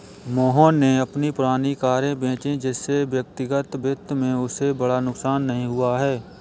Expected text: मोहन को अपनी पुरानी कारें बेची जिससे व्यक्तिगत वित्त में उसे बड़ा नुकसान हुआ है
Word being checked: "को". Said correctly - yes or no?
no